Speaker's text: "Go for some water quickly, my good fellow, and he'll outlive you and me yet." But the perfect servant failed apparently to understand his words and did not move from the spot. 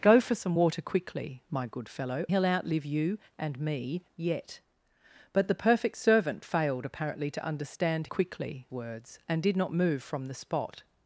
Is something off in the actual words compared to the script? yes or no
yes